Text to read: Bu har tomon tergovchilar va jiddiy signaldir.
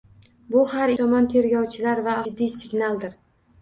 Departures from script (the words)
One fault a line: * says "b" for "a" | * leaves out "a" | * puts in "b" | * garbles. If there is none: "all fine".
all fine